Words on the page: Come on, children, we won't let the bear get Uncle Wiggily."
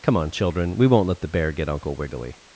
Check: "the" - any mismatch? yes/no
no